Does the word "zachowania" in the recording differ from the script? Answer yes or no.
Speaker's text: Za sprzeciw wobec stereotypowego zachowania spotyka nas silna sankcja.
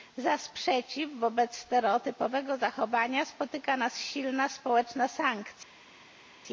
no